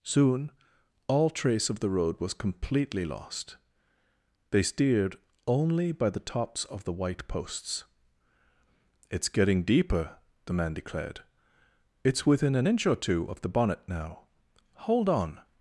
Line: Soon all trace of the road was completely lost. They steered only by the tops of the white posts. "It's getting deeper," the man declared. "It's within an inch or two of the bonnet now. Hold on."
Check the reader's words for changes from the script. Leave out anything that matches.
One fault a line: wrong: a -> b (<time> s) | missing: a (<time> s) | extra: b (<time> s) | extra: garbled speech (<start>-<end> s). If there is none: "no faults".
no faults